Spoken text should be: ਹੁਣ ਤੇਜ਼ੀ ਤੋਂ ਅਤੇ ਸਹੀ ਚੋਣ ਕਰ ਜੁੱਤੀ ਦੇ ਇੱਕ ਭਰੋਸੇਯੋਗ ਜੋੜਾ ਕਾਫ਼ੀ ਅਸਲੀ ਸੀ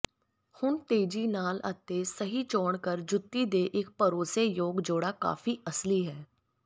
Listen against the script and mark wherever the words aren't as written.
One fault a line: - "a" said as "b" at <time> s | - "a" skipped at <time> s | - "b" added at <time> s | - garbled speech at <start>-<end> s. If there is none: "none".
- "ਤੋਂ" said as "ਨਾਲ" at 1.3 s
- "ਸੀ" said as "ਹੈ" at 6.1 s